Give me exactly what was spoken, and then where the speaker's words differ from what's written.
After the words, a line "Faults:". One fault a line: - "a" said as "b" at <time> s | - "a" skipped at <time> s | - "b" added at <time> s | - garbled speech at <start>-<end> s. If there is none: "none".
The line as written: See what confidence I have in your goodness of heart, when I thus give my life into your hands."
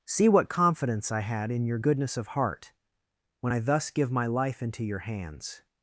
See what confidence I had in your goodness of heart, when I thus give my life into your hands."
Faults:
- "have" said as "had" at 1.2 s